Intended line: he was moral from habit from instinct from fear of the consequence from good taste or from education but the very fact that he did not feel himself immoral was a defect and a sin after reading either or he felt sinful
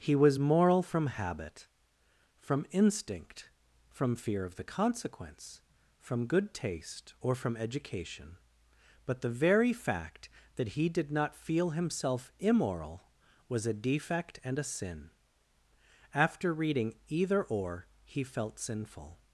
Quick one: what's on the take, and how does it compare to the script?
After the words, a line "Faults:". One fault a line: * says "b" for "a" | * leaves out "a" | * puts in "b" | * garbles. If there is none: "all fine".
he was moral from habit from instinct from fear of the consequence from good taste or from education but the very fact that he did not feel himself immoral was a defect and a sin after reading either or he felt sinful
Faults:
all fine